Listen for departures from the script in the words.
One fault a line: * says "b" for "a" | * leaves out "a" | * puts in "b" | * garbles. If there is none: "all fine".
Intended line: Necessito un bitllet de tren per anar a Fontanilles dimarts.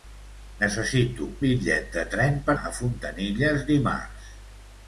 * leaves out "un"
* leaves out "anar"